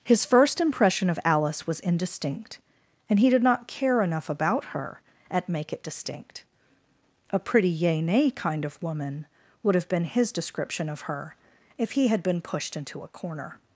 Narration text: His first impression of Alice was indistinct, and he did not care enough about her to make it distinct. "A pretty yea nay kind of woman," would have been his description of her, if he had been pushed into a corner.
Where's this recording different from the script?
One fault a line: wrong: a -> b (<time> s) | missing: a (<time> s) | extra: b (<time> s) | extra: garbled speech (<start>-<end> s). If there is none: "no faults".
wrong: to -> at (5.3 s)